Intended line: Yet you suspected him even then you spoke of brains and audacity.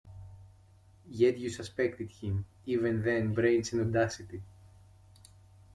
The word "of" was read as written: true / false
false